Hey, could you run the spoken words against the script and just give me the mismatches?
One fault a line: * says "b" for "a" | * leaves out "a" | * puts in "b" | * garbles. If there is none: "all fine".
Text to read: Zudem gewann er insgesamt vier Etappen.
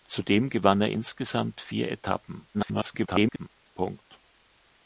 * garbles